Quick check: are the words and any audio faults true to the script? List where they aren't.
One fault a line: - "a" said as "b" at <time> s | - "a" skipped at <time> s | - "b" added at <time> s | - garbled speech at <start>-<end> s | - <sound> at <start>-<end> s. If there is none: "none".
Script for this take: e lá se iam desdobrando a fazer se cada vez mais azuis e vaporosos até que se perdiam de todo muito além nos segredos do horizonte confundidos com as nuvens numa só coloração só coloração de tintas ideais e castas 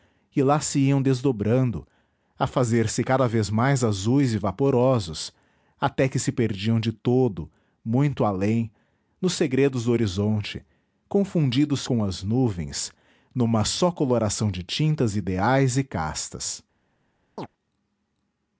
- "só coloração" skipped at 14.5 s
- chirp at 17.4-17.5 s